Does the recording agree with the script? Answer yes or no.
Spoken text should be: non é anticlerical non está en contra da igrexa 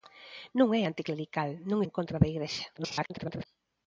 no